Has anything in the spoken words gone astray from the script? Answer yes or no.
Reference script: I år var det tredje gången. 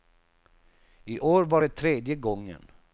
no